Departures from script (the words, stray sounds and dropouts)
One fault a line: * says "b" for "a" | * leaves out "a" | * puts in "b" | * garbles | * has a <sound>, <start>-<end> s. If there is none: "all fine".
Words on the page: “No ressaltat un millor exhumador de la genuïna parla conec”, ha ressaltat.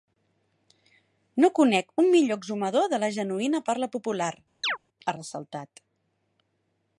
* says "conec" for "ressaltat"
* says "popular" for "conec"
* has a chirp, 4.6-4.8 s